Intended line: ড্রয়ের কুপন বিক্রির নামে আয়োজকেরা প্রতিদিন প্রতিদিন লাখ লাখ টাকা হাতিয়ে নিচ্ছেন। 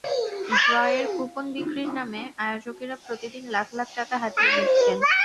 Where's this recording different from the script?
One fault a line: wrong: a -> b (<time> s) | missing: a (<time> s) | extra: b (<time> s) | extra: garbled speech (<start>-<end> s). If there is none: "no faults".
missing: প্রতিদিন (3.4 s)